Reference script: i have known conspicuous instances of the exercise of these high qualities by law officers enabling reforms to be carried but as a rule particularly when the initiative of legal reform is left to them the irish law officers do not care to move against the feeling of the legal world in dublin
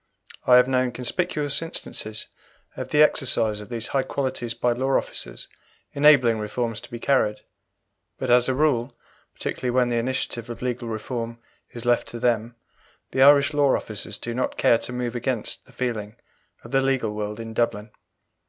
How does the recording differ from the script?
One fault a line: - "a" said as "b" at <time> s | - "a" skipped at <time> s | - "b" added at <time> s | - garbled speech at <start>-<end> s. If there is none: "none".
none